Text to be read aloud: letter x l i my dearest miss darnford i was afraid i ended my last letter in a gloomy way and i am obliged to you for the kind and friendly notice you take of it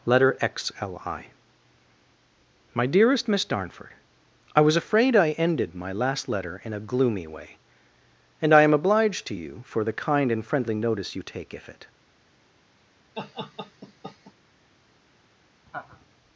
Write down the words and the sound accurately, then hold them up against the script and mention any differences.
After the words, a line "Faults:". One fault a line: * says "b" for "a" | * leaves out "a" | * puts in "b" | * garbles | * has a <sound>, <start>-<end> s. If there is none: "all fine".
letter x l i my dearest miss darnford i was afraid i ended my last letter in a gloomy way and i am obliged to you for the kind and friendly notice you take if it
Faults:
* says "if" for "of"
* has a laugh, 13.1-14.3 s
* has a laugh, 15.7-16.1 s